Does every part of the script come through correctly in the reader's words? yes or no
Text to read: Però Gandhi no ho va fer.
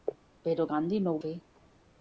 no